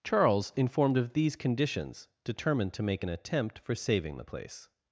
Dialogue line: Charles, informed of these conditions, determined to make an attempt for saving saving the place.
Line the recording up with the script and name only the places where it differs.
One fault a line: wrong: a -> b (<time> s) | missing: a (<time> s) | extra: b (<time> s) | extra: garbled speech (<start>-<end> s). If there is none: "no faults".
missing: saving (4.2 s)